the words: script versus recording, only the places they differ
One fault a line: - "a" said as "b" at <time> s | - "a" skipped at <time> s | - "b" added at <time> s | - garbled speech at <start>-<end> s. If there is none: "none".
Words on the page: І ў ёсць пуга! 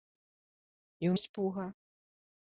none